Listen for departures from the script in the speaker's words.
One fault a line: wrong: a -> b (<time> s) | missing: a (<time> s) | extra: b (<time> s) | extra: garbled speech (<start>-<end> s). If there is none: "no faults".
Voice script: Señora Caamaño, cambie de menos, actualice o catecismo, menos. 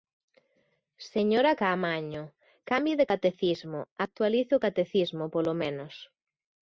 wrong: menos -> catecismo (3.1 s)
extra: polo (5.3 s)